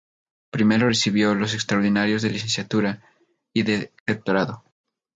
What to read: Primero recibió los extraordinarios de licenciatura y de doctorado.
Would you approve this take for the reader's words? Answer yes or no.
yes